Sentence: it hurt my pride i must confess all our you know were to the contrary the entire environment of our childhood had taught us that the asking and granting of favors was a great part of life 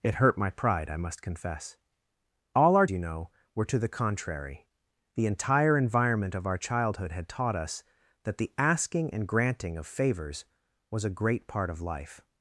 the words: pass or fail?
pass